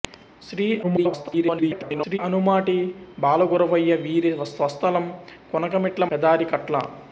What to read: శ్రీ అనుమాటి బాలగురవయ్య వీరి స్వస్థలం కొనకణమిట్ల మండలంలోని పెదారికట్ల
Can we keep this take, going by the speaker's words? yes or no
no